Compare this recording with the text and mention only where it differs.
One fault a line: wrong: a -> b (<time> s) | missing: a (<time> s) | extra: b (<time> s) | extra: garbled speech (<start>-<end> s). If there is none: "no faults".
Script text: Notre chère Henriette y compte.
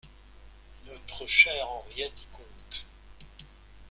no faults